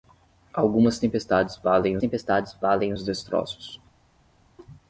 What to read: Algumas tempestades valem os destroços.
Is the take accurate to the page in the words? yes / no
no